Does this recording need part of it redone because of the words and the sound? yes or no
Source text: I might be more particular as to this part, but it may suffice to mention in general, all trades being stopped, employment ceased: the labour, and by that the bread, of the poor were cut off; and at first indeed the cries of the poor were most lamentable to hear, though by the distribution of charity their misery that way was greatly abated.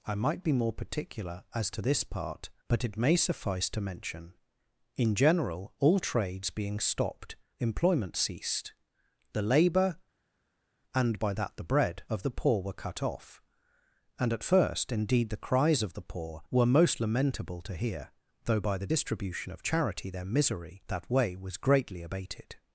no